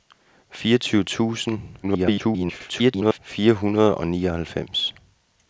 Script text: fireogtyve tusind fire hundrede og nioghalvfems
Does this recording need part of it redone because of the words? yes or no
yes